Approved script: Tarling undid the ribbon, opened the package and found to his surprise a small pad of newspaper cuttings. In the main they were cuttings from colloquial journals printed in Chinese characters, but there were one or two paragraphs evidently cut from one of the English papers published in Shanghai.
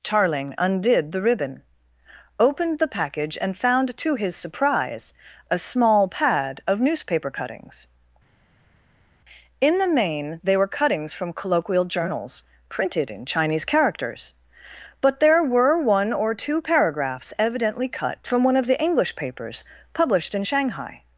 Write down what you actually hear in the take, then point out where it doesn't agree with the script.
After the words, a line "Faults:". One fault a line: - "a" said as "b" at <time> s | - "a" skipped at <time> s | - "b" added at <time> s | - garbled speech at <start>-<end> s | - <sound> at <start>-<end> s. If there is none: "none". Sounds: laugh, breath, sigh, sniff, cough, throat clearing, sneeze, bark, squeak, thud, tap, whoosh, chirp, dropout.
Tarling undid the ribbon, opened the package and found to his surprise a small pad of newspaper cuttings. In the main they were cuttings from colloquial journals printed in Chinese characters, but there were one or two paragraphs evidently cut from one of the English papers published in Shanghai.
Faults:
none